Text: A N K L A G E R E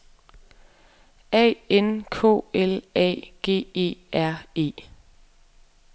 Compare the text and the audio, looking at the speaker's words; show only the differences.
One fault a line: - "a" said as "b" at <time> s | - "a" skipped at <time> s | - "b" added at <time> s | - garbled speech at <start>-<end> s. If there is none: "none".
none